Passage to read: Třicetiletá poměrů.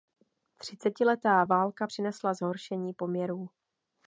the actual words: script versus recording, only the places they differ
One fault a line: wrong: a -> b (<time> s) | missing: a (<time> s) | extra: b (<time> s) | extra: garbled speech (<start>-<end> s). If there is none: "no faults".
extra: válka přinesla zhoršení (1.4 s)